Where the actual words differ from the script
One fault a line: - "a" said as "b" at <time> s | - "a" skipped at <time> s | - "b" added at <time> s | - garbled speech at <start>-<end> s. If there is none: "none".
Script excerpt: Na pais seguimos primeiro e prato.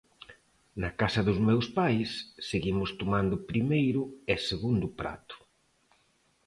- "casa dos meus" added at 1.0 s
- "tomando" added at 3.0 s
- "segundo" added at 4.5 s